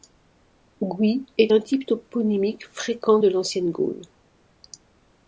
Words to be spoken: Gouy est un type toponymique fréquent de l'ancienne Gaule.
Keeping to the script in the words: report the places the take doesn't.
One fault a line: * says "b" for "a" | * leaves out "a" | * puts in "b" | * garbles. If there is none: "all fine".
all fine